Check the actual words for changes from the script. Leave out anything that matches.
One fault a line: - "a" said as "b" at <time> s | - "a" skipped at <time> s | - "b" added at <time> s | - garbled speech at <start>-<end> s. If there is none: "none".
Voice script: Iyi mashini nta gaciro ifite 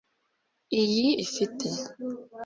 - "mashini nta gaciro" skipped at 1.1 s